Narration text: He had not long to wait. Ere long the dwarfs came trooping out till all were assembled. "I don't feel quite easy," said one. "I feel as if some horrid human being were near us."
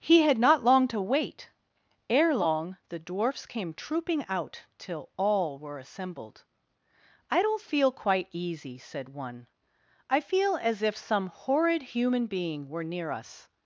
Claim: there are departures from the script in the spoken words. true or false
false